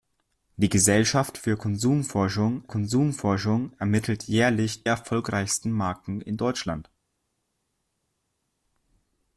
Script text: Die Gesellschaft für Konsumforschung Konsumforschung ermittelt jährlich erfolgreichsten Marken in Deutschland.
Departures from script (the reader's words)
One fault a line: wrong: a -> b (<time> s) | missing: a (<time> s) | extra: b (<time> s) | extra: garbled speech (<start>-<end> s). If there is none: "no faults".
no faults